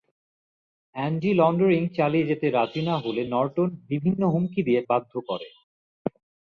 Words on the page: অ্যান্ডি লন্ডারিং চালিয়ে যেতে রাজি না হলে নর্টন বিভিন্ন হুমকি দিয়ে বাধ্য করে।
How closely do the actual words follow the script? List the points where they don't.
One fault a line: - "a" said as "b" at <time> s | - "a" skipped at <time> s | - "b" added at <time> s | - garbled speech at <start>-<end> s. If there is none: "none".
none